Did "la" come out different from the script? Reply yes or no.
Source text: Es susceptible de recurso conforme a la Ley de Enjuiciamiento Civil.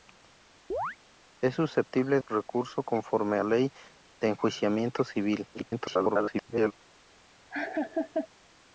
yes